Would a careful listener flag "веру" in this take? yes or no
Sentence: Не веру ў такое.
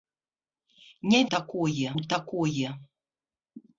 yes